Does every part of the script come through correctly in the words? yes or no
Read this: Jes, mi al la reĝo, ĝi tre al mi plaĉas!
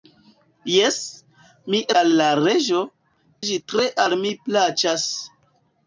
yes